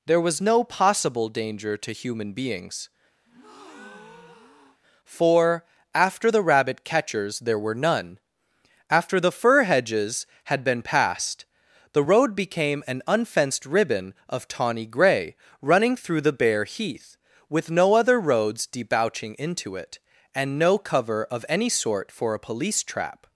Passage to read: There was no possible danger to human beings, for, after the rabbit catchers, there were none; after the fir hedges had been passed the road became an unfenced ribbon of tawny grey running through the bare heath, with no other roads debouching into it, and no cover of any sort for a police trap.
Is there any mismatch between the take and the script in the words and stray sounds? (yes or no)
yes